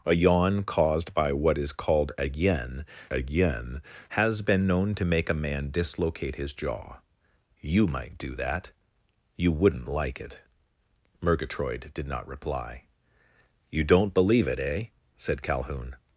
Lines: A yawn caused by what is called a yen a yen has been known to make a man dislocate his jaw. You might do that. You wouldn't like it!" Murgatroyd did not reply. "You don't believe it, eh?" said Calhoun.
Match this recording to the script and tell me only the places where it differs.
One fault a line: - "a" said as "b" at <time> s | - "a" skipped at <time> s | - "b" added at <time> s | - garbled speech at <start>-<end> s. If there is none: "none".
none